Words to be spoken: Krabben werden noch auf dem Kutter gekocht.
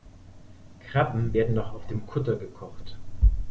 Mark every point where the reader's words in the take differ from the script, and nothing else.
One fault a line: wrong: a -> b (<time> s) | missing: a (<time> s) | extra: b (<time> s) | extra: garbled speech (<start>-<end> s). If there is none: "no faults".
no faults